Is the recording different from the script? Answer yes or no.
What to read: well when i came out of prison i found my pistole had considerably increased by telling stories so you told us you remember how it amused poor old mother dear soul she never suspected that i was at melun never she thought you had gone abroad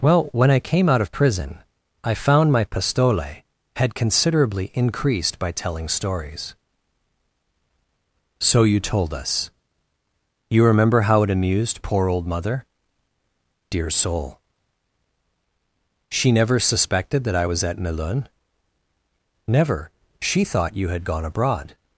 no